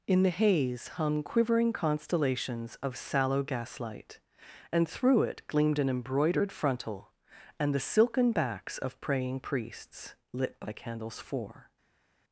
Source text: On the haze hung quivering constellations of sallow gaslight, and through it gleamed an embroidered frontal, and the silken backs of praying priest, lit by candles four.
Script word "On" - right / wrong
wrong